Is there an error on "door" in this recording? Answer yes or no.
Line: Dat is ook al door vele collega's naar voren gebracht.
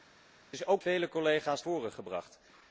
yes